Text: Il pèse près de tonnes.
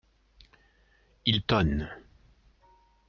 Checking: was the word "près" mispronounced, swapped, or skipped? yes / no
yes